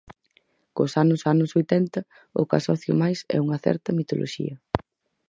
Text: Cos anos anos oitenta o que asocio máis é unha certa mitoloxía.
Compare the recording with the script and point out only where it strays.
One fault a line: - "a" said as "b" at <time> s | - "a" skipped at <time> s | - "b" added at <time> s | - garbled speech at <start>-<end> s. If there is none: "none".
none